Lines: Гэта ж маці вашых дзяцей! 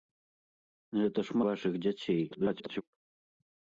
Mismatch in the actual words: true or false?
true